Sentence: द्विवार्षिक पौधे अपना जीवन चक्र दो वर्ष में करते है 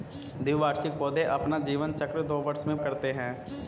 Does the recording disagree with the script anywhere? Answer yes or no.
no